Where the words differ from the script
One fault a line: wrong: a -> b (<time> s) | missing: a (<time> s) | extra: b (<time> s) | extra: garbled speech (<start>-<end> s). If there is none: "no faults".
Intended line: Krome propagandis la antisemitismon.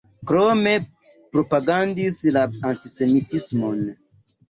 no faults